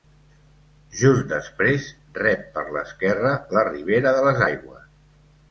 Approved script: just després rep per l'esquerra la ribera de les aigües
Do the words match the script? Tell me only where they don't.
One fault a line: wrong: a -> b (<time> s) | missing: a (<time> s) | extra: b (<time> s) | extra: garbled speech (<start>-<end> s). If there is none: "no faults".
no faults